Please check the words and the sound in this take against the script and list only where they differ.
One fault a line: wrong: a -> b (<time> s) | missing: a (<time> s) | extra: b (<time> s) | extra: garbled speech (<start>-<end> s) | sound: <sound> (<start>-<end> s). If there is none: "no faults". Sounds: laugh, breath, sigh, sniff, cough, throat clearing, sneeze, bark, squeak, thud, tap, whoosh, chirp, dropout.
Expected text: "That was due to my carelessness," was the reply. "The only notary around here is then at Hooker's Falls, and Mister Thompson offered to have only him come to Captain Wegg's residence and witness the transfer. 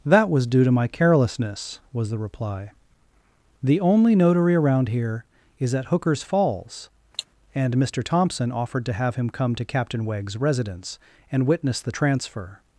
missing: then (5.8 s)
sound: cough (7.1-7.3 s)
missing: only (9.2 s)